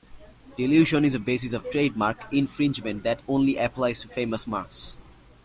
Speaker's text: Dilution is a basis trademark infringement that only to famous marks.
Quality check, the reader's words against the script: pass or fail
fail